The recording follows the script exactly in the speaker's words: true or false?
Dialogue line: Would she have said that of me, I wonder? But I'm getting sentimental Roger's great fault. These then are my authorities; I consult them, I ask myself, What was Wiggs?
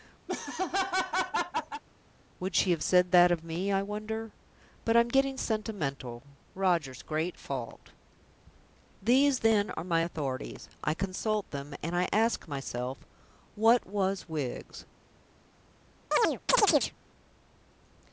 false